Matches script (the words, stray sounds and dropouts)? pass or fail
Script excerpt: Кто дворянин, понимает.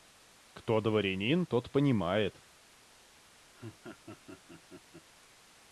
fail